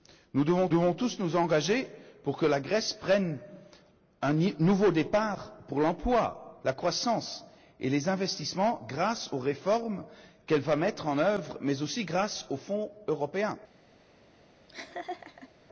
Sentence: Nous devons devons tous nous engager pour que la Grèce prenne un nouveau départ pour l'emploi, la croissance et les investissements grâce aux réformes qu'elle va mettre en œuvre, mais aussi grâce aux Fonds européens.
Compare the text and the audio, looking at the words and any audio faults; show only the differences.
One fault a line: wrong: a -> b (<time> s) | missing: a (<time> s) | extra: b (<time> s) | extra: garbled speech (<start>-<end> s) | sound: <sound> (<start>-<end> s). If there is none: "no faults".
sound: laugh (14.7-15.5 s)